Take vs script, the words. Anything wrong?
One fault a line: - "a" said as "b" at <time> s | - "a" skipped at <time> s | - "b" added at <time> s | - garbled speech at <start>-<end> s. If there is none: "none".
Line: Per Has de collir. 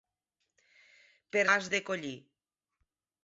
none